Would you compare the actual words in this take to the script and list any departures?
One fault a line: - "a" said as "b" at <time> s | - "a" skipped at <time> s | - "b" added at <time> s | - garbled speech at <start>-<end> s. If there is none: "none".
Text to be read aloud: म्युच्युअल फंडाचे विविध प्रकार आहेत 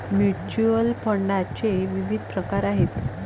none